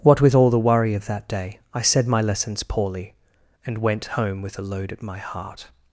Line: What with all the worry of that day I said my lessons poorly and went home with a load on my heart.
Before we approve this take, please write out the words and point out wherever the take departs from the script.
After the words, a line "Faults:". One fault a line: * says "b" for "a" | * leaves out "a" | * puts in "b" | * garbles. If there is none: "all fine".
What with all the worry of that day I said my lessons poorly and went home with a load at my heart.
Faults:
* says "at" for "on"